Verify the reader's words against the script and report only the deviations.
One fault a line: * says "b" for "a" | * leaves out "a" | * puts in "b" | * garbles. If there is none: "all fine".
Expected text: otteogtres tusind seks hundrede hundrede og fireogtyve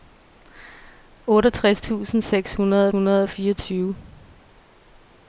all fine